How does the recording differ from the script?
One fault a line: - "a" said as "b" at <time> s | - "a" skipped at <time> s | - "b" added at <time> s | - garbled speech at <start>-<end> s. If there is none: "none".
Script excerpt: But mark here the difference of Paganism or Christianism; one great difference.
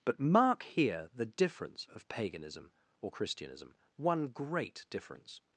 none